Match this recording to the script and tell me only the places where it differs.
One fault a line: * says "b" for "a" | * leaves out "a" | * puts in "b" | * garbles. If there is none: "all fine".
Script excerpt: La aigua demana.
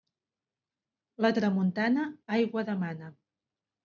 * puts in "tramuntana"